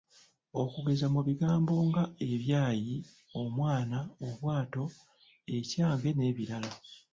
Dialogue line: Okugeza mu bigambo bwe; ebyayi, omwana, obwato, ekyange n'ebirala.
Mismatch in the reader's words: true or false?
true